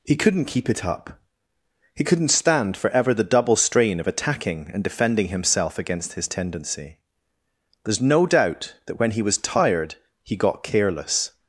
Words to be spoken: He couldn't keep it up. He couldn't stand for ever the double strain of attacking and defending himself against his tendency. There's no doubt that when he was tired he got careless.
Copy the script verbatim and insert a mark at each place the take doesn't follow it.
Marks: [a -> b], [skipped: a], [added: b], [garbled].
He couldn't keep it up. He couldn't stand for ever the double strain of attacking and defending himself against his tendency. There's no doubt that when he was tired he got careless.